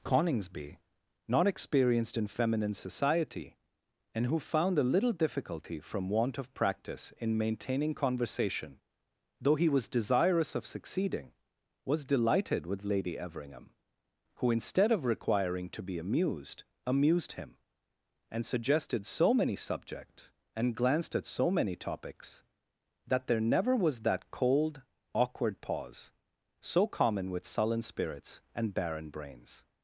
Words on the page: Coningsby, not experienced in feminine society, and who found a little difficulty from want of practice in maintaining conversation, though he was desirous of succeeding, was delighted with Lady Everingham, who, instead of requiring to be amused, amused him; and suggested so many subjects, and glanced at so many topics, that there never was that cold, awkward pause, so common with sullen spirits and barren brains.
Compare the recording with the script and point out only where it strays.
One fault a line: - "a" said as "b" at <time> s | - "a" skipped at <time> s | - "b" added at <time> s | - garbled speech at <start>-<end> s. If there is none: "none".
none